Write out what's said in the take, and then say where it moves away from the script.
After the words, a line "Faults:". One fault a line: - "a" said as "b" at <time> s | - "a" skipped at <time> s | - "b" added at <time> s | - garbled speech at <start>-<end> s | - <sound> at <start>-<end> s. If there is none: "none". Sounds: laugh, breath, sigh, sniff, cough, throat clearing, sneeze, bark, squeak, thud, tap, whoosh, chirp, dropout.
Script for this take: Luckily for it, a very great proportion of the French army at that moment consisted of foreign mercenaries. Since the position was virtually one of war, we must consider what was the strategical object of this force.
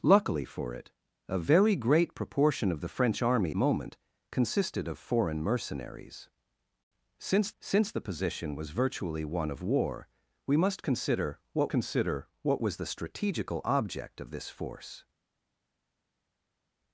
Luckily for it, a very great proportion of the French army moment consisted of foreign mercenaries. Since since the position was virtually one of war, we must consider what consider what was the strategical object of this force.
Faults:
- "at that" skipped at 3.5 s
- "since" added at 7.6 s
- "consider what" added at 11.7 s